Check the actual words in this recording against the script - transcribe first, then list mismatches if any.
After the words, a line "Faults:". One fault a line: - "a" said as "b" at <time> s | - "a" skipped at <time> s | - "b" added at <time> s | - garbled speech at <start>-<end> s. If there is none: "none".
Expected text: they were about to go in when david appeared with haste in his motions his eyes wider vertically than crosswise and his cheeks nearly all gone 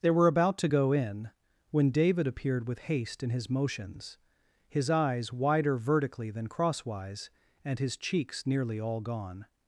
they were about to go in when david appeared with haste in his motions his eyes wider vertically than crosswise and his cheeks nearly all gone
Faults:
none